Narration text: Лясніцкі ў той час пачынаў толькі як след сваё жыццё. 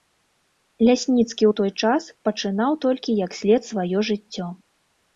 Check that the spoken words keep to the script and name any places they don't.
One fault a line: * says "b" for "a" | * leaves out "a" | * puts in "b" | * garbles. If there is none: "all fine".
all fine